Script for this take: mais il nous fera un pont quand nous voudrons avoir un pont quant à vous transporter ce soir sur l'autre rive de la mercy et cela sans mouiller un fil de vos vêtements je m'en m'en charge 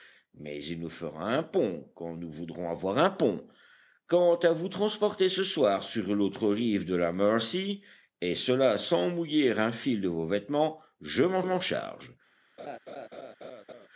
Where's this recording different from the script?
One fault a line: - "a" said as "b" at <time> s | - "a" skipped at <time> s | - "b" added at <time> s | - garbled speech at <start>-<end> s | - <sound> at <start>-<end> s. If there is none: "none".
- laugh at 12.6-13.9 s